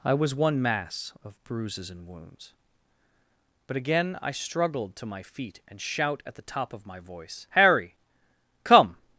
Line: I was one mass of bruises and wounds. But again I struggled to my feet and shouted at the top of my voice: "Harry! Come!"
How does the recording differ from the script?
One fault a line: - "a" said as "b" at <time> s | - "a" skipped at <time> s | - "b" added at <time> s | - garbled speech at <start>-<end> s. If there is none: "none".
- "shouted" said as "shout" at 5.8 s